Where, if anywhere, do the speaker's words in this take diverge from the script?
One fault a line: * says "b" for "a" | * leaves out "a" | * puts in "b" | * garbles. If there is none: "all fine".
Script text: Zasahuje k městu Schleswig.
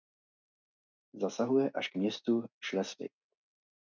* puts in "až"